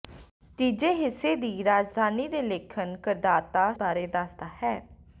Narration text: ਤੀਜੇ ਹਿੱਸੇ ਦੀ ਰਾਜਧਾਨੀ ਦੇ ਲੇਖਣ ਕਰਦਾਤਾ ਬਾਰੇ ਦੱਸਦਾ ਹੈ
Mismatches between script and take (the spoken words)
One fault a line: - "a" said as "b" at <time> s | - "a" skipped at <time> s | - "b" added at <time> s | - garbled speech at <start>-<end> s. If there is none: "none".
none